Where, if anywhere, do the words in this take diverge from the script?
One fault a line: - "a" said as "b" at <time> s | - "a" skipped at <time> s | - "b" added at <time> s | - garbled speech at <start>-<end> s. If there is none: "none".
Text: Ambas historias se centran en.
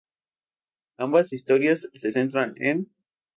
none